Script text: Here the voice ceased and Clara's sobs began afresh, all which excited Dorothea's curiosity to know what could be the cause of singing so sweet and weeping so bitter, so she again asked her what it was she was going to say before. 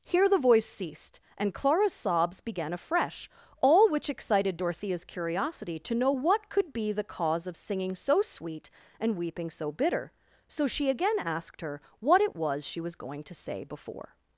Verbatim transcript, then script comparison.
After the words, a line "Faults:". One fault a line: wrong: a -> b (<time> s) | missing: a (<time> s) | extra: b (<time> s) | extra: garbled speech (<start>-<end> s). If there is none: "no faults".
Here the voice ceased and Clara's sobs began afresh, all which excited Dorothea's curiosity to know what could be the cause of singing so sweet and weeping so bitter, so she again asked her what it was she was going to say before.
Faults:
no faults